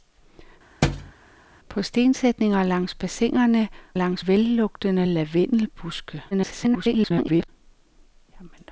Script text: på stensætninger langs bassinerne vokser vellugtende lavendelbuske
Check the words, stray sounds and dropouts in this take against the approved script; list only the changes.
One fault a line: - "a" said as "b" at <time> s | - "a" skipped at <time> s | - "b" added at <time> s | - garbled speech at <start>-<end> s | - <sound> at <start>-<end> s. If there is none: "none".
- thud at 0.8-1.1 s
- "vokser" said as "langs" at 3.9 s
- garbled speech at 6.3-7.5 s